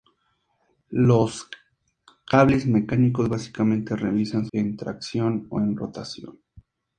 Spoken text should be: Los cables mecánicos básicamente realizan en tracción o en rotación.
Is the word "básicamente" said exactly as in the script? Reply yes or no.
yes